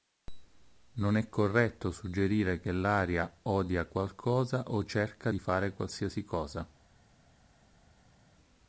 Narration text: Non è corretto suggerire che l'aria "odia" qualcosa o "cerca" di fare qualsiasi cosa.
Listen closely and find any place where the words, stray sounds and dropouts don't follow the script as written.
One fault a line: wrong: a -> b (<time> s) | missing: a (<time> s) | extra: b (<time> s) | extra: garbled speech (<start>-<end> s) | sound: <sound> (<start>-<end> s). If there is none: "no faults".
no faults